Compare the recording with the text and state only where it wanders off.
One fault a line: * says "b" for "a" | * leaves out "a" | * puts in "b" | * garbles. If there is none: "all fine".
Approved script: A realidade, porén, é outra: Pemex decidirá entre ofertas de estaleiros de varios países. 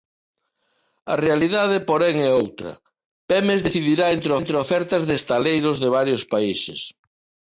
* puts in "entre"